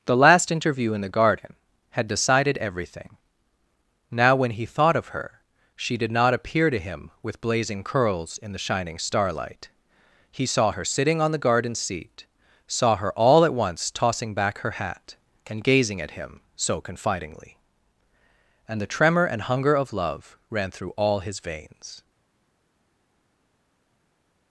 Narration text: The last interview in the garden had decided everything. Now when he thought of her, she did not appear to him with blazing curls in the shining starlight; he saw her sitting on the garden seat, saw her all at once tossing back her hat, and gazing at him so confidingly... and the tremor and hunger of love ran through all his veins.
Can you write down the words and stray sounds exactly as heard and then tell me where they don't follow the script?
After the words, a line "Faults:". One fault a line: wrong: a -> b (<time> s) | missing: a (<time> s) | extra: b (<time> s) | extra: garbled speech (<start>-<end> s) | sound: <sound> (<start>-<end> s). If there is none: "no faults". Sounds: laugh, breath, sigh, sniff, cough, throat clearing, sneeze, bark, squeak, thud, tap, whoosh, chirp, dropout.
The last interview in the garden had decided everything. Now when he thought of her, she did not appear to him with blazing curls in the shining starlight; he saw her sitting on the garden seat, saw her all at once tossing back her hat, and gazing at him so confidingly... and the tremor and hunger of love ran through all his veins.
Faults:
no faults